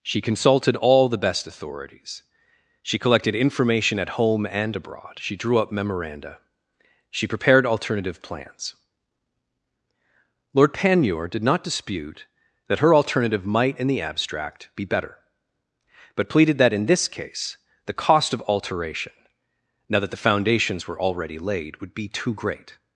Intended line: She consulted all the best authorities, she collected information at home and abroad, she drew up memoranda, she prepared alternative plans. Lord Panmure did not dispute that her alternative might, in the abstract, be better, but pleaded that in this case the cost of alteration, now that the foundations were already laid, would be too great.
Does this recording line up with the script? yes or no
yes